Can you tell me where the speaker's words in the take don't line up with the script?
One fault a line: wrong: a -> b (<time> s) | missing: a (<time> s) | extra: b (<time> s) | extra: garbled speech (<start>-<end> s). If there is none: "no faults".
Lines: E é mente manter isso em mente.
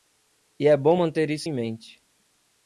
wrong: mente -> bom (0.8 s)